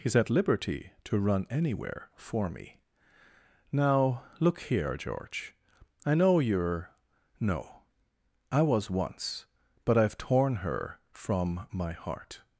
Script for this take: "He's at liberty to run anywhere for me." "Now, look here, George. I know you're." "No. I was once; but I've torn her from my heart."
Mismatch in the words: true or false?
false